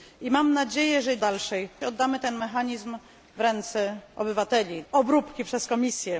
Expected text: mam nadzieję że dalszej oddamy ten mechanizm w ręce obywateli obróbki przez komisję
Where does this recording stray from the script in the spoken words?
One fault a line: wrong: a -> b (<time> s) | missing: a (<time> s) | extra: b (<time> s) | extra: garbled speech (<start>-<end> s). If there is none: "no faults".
no faults